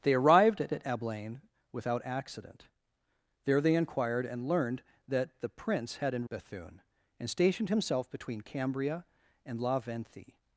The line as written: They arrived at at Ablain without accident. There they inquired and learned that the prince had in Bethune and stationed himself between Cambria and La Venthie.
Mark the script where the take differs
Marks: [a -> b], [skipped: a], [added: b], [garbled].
They arrived at at Ablain without accident. There they inquired and learned that the prince had in Bethune and stationed himself between Cambria and La Venthie.